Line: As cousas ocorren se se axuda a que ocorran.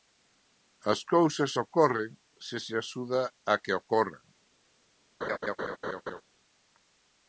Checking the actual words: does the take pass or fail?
pass